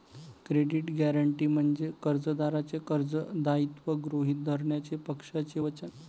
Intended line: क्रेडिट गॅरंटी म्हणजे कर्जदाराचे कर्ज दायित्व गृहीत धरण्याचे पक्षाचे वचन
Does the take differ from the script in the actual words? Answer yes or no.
no